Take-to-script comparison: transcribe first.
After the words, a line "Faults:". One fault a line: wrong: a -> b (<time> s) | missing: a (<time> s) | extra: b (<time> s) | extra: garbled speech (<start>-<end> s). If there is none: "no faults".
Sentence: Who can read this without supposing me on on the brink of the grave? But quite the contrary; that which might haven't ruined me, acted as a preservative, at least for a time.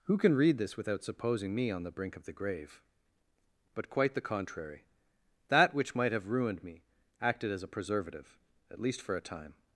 Who can read this without supposing me on the brink of the grave? But quite the contrary; that which might have ruined me, acted as a preservative, at least for a time.
Faults:
missing: on (1.8 s)
wrong: haven't -> have (6.1 s)